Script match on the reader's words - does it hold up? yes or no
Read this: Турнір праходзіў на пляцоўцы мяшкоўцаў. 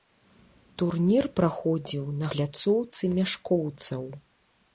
yes